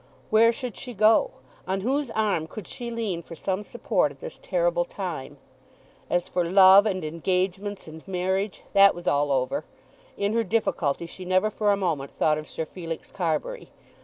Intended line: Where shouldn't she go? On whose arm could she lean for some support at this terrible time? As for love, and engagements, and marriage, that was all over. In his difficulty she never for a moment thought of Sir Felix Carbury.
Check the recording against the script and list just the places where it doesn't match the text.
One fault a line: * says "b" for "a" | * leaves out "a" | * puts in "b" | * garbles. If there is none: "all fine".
* says "should" for "shouldn't"
* says "her" for "his"